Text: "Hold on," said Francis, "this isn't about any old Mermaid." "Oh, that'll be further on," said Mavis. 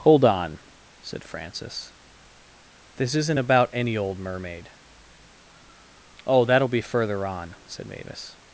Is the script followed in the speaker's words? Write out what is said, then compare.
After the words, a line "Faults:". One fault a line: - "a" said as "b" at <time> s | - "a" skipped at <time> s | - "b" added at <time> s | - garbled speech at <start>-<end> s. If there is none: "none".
"Hold on," said Francis, "this isn't about any old Mermaid." "Oh, that'll be further on," said Mavis.
Faults:
none